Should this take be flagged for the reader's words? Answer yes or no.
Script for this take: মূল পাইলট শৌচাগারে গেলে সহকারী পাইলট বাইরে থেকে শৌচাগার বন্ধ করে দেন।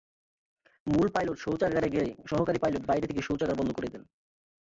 no